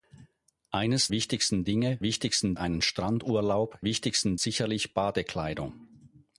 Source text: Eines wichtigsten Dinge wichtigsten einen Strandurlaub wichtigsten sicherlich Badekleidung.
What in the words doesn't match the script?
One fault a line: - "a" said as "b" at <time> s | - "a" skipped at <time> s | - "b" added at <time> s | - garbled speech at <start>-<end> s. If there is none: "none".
none